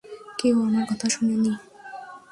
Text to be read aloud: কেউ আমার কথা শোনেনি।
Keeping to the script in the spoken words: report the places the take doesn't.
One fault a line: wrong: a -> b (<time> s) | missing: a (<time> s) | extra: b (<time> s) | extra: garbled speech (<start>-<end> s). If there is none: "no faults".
no faults